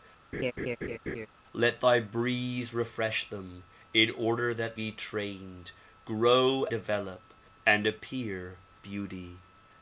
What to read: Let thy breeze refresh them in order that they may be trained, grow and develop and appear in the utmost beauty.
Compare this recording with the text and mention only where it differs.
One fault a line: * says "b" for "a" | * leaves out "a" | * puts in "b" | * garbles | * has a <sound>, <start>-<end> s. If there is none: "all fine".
* has a laugh, 0.3-1.3 s
* leaves out "they may"
* leaves out "and"
* leaves out "in the utmost"